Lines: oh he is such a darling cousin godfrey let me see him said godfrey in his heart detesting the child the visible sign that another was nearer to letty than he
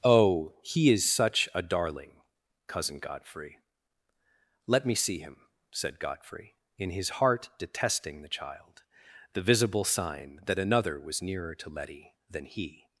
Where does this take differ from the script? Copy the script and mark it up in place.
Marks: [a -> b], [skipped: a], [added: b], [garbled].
oh he is such a darling cousin godfrey let me see him said godfrey in his heart detesting the child the visible sign that another was nearer to letty than he